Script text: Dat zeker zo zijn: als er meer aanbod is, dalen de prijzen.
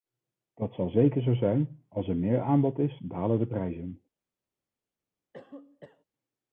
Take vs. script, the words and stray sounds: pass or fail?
fail